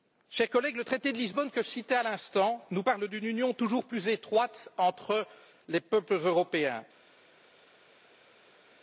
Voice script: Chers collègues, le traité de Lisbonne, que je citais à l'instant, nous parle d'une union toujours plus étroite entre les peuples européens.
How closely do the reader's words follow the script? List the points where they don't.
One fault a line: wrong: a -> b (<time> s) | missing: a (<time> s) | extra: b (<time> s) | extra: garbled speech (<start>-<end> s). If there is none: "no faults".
no faults